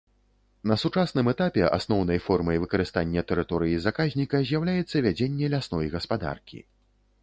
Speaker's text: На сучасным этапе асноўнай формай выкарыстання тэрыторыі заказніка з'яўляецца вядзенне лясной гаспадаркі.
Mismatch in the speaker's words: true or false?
false